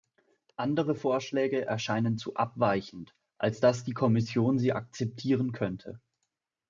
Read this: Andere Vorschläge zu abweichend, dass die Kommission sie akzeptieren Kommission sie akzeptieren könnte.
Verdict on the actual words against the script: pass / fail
fail